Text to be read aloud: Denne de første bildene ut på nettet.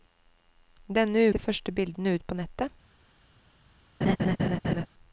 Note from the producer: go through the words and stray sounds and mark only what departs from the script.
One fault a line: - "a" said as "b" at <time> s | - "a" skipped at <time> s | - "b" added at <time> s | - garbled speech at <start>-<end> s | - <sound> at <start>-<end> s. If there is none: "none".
- laugh at 4.0-4.9 s